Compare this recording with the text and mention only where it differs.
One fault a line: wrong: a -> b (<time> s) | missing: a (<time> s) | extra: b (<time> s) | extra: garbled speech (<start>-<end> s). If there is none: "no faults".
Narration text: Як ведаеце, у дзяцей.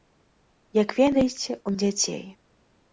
no faults